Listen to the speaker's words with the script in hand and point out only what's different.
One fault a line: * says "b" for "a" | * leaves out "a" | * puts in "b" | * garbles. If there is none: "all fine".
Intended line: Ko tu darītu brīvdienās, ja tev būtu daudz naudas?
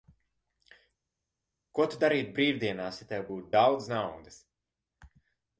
all fine